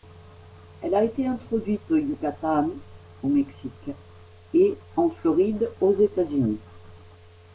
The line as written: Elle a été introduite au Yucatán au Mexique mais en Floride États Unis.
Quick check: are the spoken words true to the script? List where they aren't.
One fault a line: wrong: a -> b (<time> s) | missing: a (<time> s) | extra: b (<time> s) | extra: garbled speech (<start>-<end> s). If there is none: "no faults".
wrong: mais -> et (4.5 s)
extra: aux (5.8 s)